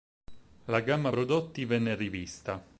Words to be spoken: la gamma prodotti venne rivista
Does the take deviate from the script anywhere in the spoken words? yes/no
no